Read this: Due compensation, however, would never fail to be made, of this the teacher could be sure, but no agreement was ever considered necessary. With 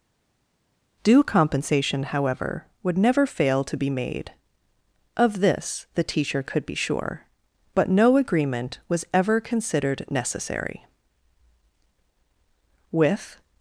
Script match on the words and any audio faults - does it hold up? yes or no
yes